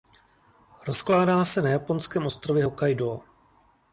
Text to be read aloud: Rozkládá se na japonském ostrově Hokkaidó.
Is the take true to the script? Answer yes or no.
yes